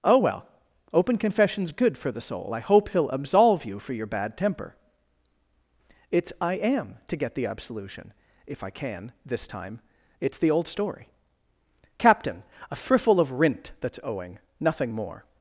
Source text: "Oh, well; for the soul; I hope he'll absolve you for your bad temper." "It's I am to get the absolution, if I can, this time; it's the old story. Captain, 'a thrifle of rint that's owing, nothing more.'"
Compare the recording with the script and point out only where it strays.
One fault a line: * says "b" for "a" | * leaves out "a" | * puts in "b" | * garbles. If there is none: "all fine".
* puts in "open confession's good"